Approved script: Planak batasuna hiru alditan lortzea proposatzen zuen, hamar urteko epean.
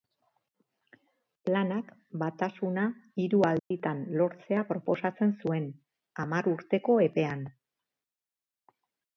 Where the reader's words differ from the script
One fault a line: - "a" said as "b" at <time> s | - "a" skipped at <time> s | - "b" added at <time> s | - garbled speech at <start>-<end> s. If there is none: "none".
none